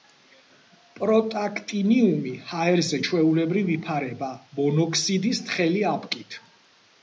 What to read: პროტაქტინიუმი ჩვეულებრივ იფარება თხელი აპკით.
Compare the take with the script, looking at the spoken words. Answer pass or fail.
fail